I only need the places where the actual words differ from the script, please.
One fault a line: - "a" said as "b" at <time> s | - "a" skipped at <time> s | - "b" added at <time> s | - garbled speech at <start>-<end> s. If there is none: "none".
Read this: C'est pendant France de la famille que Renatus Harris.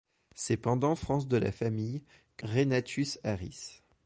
none